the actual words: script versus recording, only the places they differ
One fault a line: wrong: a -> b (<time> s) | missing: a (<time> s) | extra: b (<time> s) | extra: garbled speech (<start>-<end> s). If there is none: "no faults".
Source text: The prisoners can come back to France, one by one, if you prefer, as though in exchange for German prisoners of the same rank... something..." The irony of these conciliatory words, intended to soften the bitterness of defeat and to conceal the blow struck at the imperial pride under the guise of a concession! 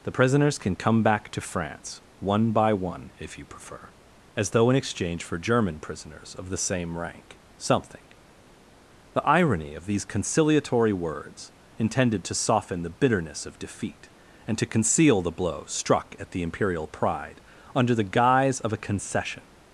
no faults